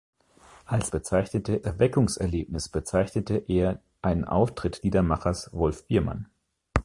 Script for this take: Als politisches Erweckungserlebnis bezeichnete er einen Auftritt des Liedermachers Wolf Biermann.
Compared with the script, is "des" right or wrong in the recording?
wrong